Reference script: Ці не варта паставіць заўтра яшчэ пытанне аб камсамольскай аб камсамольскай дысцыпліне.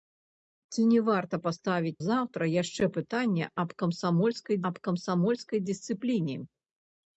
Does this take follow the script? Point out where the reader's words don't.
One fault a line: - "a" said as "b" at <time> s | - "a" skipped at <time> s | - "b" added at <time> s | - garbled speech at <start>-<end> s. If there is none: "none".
none